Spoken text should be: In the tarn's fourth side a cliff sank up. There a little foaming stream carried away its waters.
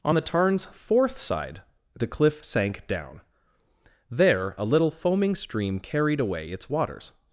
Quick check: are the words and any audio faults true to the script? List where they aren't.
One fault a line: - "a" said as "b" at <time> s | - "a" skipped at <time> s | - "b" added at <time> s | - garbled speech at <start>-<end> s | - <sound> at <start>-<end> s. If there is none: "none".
- "In" said as "On" at 0.0 s
- "a" said as "the" at 1.9 s
- "up" said as "down" at 2.9 s